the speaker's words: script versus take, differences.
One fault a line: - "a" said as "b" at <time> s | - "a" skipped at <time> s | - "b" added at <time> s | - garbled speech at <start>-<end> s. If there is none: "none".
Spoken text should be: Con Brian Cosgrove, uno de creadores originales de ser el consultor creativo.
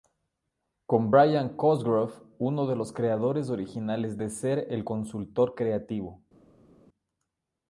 - "los" added at 2.8 s